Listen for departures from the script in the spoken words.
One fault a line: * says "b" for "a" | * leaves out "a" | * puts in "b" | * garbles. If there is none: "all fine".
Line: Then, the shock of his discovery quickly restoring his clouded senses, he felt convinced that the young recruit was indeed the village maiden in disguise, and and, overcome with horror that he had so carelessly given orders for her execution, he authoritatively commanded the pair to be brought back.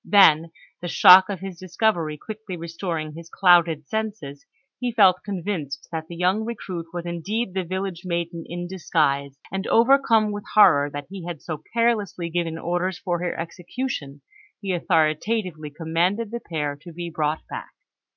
* leaves out "and"